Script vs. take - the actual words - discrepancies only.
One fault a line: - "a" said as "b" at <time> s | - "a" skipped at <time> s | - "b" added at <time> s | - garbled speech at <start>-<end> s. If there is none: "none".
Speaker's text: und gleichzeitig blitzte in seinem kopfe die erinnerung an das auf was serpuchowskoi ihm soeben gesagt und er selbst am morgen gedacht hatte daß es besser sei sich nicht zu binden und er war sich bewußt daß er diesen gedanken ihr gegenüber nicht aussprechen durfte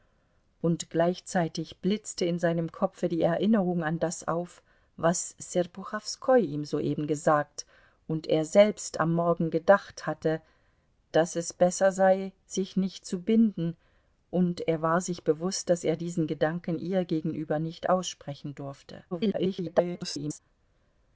- garbled speech at 19.1-20.4 s